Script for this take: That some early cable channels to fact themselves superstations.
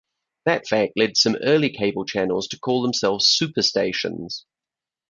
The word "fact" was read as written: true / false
false